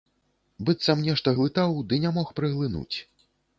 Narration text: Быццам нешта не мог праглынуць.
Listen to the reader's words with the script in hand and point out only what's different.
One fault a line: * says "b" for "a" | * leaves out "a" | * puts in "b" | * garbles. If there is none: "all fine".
* puts in "глытаў ды"